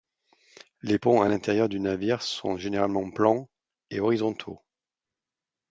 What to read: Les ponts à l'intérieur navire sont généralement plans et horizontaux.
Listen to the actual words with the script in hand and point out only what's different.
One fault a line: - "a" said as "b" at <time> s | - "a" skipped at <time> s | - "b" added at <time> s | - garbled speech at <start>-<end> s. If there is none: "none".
- "du" added at 1.7 s